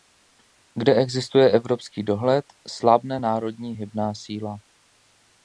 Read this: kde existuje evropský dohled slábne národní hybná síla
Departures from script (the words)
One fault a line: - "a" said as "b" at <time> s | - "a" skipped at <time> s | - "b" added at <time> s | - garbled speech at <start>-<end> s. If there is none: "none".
none